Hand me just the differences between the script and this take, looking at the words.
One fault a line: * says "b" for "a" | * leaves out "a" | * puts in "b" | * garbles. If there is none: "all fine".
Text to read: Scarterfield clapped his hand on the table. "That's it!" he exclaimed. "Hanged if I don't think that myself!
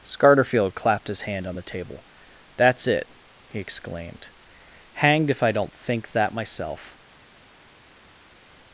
all fine